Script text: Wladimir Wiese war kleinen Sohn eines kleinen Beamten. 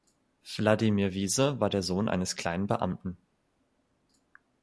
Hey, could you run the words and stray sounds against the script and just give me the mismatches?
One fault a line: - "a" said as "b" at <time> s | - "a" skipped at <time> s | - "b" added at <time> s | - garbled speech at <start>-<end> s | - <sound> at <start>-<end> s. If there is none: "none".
- "kleinen" said as "der" at 1.7 s